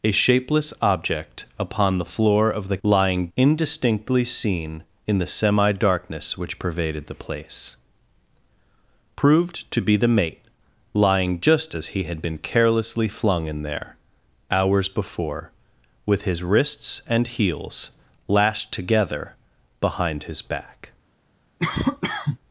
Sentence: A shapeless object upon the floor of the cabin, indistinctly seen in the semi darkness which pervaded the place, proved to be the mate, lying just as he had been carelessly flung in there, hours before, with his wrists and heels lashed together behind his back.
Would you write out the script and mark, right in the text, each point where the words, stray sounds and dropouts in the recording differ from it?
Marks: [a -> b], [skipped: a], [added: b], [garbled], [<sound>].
A shapeless object upon the floor of the [cabin, -> lying] indistinctly seen in the semi darkness which pervaded the place, proved to be the mate, lying just as he had been carelessly flung in there, hours before, with his wrists and heels lashed together behind his back. [cough]